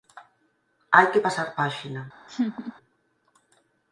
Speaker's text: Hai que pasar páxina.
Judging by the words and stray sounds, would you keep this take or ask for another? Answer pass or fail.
fail